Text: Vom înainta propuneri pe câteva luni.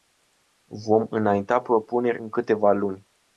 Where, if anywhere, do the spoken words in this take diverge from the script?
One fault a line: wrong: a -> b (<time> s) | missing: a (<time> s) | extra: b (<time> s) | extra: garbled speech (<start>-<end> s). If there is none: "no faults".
wrong: pe -> în (2.2 s)